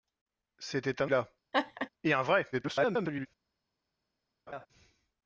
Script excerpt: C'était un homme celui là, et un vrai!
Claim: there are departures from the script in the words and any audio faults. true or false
true